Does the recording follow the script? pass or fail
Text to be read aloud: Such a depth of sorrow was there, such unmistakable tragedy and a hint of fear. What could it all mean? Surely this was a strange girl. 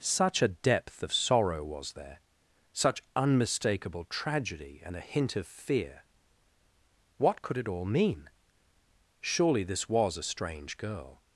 pass